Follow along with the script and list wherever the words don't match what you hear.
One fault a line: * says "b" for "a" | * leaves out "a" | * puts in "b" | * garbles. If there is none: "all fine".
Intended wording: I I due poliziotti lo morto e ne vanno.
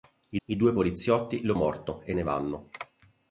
all fine